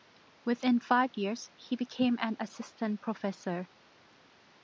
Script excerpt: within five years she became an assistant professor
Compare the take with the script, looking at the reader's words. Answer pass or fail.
fail